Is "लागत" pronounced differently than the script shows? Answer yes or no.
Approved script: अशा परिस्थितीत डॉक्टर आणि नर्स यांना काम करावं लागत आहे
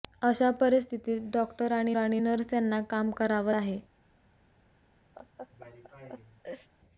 yes